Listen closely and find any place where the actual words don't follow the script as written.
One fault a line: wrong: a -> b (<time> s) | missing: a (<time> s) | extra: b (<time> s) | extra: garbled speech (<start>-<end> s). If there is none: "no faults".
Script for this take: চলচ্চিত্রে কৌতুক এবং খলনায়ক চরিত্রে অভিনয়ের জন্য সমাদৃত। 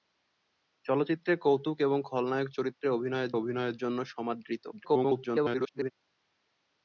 extra: অভিনয়ের (3.3 s)
extra: garbled speech (4.7-5.9 s)